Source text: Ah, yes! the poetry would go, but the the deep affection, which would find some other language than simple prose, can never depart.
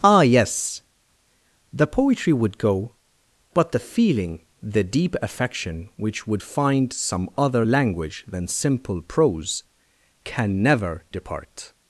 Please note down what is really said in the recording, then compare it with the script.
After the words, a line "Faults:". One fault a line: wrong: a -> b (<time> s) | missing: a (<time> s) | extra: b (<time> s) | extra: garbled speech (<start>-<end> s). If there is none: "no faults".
Ah, yes! the poetry would go, but the feeling, the deep affection, which would find some other language than simple prose, can never depart.
Faults:
extra: feeling (3.8 s)